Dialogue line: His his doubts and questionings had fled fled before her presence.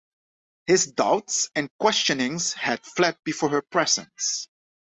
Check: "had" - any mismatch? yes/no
no